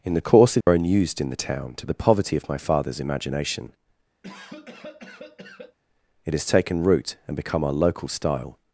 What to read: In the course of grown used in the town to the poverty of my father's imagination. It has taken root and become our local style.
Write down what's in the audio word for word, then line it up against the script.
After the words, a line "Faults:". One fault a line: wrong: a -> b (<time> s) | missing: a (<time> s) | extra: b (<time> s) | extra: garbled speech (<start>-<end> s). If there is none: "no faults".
In the course of grown used in the town to the poverty of my father's imagination. It has taken root and become our local style.
Faults:
no faults